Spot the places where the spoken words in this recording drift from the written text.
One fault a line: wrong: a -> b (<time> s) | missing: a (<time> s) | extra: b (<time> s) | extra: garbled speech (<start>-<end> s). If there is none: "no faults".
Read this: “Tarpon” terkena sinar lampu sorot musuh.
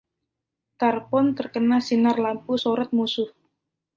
no faults